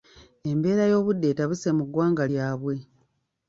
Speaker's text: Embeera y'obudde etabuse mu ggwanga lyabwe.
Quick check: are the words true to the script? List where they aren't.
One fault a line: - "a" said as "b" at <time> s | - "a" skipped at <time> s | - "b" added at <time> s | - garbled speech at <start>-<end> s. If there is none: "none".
none